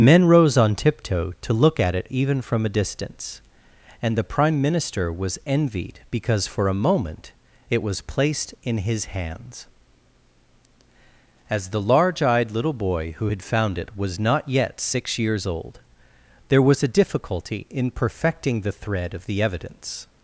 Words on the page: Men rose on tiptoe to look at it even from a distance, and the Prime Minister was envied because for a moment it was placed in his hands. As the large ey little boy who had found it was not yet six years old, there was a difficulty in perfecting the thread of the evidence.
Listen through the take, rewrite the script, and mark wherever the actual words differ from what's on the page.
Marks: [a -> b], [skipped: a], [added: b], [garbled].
Men rose on tiptoe to look at it even from a distance, and the Prime Minister was envied because for a moment it was placed in his hands. As the large [ey -> eyed] little boy who had found it was not yet six years old, there was a difficulty in perfecting the thread of the evidence.